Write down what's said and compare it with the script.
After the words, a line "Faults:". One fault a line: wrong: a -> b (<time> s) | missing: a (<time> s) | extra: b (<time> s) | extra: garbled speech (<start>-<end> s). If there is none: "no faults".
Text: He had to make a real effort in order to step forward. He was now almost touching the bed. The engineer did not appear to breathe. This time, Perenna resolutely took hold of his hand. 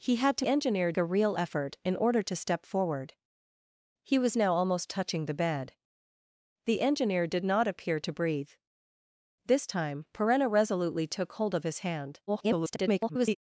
He had to engineer a real effort in order to step forward. He was now almost touching the bed. The engineer did not appear to breathe. This time, Perenna resolutely took hold of his hand. [garbled]
Faults:
wrong: make -> engineer (0.5 s)
extra: garbled speech (12.3-13.4 s)